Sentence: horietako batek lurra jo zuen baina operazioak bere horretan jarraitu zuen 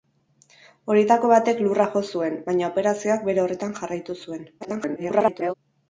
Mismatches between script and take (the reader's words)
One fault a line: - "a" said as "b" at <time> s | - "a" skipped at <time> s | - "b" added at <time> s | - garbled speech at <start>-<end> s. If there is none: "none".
- garbled speech at 4.6-5.5 s